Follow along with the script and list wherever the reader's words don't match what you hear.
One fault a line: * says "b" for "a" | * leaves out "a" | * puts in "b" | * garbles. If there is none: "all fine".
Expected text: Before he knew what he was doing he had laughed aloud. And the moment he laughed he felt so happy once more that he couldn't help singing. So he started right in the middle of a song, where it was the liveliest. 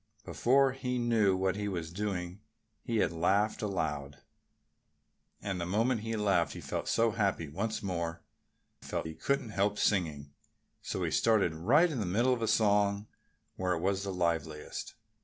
* says "felt" for "that"